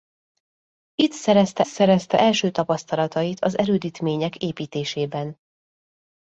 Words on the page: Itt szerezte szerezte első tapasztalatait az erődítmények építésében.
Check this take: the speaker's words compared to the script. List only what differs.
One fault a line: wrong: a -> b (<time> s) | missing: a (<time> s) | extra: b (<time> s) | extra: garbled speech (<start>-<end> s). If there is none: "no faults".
no faults